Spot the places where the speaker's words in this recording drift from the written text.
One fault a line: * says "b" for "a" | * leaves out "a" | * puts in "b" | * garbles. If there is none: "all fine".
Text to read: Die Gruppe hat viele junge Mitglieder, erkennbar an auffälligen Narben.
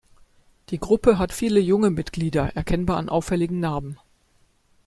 all fine